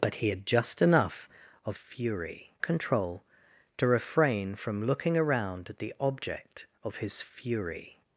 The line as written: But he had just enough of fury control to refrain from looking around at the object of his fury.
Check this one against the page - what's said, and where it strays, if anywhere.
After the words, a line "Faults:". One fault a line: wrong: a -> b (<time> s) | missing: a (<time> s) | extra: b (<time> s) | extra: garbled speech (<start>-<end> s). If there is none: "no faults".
But he had just enough of fury control to refrain from looking around at the object of his fury.
Faults:
no faults